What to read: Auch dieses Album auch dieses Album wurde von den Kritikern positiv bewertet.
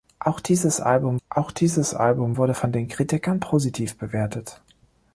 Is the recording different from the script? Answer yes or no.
no